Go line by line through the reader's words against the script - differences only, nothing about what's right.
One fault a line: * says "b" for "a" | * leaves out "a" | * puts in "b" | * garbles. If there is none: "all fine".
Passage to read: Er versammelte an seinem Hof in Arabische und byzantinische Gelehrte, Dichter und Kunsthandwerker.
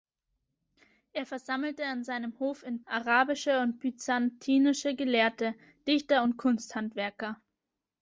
all fine